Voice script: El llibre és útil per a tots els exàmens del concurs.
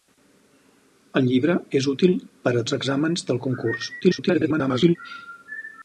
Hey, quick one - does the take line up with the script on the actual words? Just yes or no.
no